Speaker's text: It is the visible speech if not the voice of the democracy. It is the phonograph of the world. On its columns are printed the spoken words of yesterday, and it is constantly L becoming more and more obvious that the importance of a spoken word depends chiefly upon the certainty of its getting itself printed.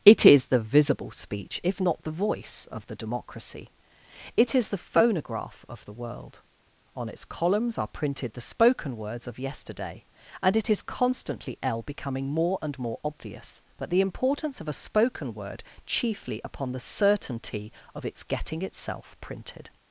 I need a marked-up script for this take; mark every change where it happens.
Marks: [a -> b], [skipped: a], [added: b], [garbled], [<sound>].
It is the visible speech if not the voice of the democracy. It is the phonograph of the world. On its columns are printed the spoken words of yesterday, and it is constantly L becoming more and more obvious that the importance of a spoken word [skipped: depends] chiefly upon the certainty of its getting itself printed.